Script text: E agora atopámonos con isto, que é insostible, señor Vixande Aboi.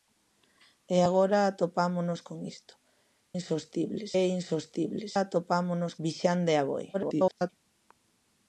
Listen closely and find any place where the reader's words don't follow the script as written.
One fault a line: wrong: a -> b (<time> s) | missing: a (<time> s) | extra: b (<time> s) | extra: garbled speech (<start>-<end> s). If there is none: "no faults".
wrong: que -> insostible (3.4 s)
wrong: señor -> atopámonos (5.2 s)
extra: garbled speech (6.9-7.5 s)